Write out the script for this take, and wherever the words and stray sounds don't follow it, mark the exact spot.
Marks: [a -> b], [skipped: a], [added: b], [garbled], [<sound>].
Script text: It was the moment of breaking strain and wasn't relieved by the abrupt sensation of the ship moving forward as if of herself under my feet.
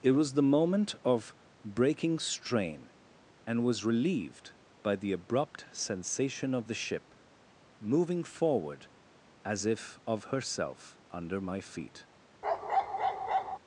It was the moment of breaking strain and [wasn't -> was] relieved by the abrupt sensation of the ship moving forward as if of herself under my feet. [bark]